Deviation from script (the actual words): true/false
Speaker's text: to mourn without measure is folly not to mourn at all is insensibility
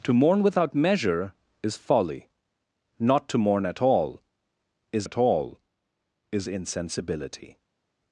true